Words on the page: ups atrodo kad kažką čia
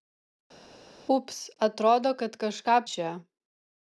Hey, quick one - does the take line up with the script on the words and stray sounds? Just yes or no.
yes